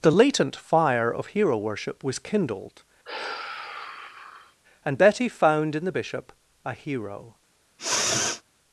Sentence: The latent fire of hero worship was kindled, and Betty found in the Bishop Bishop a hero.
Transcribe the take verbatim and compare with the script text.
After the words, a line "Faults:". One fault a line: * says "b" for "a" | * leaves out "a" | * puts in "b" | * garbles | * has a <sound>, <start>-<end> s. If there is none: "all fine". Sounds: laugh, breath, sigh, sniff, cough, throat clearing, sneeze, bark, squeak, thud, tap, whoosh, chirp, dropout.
The latent fire of hero worship was kindled, and Betty found in the Bishop a hero.
Faults:
* has a sigh, 3.0-4.6 s
* leaves out "Bishop"
* has a sniff, 7.8-8.4 s